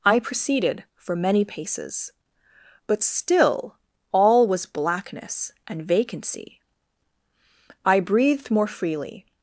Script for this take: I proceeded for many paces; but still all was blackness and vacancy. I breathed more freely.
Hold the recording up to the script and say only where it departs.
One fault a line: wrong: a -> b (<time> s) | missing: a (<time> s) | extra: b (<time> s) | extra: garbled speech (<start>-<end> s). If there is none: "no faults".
no faults